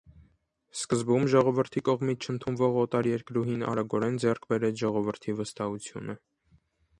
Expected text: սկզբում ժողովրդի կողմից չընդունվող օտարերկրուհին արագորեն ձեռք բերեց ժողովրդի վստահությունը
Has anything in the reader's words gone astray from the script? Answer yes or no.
no